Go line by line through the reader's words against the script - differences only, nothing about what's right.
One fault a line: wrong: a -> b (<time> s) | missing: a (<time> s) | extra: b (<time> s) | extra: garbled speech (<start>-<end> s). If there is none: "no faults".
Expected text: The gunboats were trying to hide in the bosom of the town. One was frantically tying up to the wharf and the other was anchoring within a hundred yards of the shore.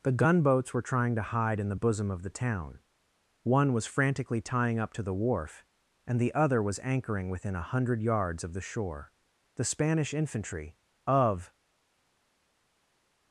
extra: The Spanish infantry of (9.6 s)